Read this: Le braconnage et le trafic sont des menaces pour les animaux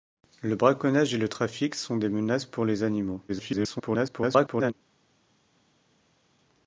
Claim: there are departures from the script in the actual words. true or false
true